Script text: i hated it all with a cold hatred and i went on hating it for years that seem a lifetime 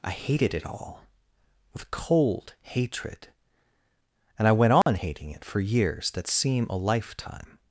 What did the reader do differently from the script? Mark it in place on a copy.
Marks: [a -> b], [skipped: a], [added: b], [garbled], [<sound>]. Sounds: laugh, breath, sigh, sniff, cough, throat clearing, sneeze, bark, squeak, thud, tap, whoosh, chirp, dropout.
i hated it all with [skipped: a] cold hatred and i went on [dropout] hating it for years that seem a lifetime